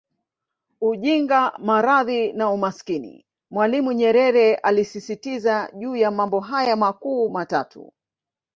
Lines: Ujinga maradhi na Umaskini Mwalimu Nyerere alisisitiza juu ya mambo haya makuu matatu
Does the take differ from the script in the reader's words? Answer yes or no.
no